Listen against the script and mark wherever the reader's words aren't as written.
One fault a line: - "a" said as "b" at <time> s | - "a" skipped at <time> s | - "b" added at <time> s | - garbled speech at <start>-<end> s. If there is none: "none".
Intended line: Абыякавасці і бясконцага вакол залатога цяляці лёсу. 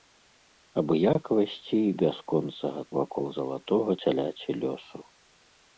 none